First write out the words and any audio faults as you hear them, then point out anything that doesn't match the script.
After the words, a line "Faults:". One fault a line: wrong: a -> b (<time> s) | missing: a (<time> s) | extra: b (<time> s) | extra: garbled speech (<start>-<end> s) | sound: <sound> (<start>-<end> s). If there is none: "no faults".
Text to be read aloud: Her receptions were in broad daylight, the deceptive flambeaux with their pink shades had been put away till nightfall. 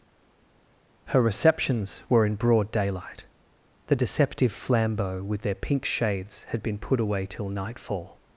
Her receptions were in broad daylight, the deceptive flambeaux with their pink shades had been put away till nightfall.
Faults:
no faults